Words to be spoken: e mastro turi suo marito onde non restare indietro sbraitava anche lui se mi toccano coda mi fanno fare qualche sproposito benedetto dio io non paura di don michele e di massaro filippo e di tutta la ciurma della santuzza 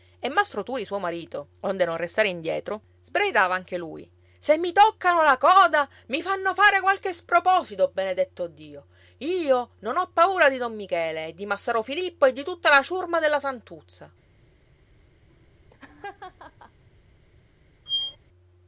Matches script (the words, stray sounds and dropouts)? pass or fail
fail